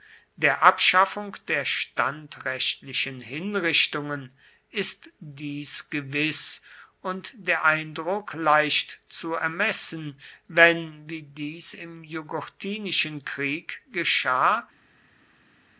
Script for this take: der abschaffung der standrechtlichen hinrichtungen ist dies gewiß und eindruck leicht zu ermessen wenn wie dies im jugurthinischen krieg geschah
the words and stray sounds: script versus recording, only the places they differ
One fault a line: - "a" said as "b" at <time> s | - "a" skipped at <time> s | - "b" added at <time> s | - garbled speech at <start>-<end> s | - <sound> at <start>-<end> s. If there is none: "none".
- "der" added at 7.3 s